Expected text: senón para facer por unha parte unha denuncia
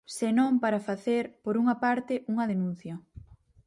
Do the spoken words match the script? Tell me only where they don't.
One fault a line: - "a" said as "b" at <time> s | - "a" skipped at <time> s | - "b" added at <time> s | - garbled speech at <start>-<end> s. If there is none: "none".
none